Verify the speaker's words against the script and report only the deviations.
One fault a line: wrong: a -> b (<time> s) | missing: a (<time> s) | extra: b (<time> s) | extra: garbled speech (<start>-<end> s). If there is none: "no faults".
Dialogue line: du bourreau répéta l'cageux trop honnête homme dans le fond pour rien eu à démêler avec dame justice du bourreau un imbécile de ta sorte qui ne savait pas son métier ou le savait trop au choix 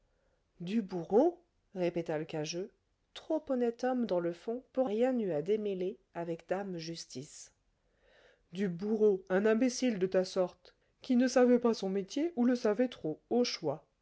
no faults